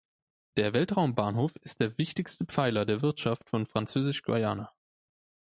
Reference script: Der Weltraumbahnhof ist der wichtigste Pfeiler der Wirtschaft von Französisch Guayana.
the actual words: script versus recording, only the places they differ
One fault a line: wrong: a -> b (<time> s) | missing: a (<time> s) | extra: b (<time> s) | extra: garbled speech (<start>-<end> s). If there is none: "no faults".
no faults